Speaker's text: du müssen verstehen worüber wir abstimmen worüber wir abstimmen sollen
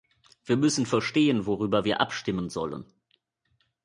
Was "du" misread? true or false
true